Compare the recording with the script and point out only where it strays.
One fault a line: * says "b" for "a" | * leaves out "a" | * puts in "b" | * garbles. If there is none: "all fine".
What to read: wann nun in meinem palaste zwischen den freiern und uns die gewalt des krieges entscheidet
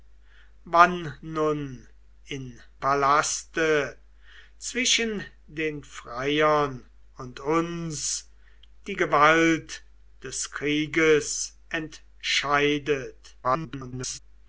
* leaves out "meinem"
* garbles